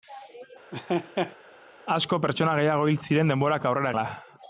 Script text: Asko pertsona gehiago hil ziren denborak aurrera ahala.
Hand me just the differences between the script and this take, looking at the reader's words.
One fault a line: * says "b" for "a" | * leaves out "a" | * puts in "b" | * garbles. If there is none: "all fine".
all fine